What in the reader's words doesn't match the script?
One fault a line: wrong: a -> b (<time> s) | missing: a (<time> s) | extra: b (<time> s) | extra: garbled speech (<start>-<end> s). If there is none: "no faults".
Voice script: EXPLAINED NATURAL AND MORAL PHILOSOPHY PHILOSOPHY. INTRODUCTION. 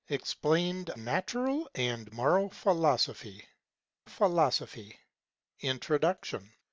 no faults